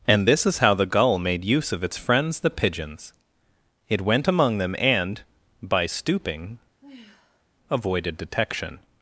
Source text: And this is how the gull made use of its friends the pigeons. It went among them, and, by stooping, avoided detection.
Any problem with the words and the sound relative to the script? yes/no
yes